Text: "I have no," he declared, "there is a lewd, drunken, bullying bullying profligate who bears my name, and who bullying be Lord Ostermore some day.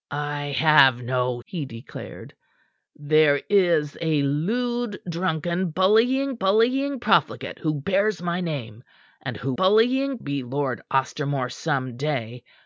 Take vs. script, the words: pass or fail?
pass